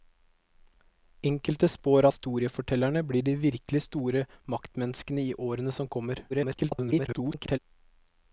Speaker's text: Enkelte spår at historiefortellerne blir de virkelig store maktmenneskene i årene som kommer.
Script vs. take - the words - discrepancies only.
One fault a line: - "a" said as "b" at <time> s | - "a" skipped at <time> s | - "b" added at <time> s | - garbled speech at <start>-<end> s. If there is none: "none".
- "at" skipped at 2.1 s
- garbled speech at 6.3-7.6 s